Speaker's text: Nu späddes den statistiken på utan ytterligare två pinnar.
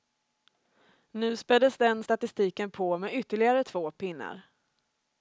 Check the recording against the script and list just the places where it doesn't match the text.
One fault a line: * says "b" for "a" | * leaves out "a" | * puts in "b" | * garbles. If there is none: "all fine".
* says "med" for "utan"